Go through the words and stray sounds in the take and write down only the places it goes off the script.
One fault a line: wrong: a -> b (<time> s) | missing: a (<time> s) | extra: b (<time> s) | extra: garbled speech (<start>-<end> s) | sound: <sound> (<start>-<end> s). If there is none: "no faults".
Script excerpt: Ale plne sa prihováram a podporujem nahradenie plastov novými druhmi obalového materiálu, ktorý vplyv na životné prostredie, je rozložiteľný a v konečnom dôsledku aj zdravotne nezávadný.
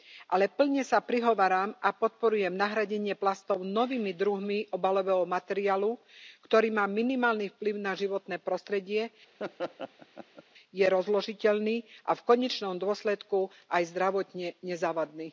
extra: má minimálny (6.7 s)
sound: laugh (9.4-10.4 s)